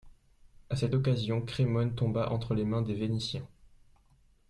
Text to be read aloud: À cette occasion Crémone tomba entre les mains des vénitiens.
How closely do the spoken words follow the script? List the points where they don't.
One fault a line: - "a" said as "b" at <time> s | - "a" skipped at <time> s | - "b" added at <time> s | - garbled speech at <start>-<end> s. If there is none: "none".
none